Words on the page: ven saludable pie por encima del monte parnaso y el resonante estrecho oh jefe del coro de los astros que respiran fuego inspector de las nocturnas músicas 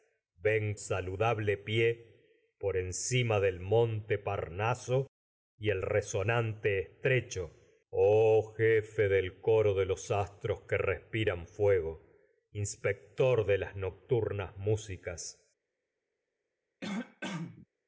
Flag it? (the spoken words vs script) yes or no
no